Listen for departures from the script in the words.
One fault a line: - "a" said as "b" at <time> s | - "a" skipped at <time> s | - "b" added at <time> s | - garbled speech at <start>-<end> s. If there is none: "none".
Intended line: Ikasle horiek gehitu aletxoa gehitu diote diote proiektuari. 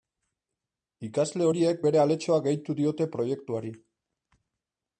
- "gehitu" said as "bere" at 1.9 s
- "diote" skipped at 3.1 s